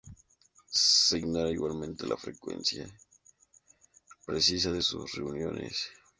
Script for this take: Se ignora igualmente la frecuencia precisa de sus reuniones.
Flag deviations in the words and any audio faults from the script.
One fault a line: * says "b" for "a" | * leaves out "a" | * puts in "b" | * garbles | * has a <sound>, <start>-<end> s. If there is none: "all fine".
all fine